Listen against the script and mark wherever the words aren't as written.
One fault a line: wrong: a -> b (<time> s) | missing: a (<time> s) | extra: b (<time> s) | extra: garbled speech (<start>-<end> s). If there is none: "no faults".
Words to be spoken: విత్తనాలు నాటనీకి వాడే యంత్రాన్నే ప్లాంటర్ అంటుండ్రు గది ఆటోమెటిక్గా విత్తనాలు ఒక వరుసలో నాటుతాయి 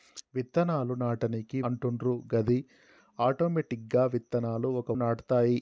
missing: వాడే యంత్రాన్నే ప్లాంటర్ (1.6 s)
missing: వరుసలో (4.9 s)